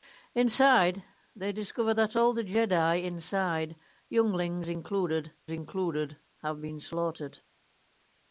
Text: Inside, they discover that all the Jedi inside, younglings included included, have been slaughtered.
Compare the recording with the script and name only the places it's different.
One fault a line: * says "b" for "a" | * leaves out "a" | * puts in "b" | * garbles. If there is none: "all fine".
all fine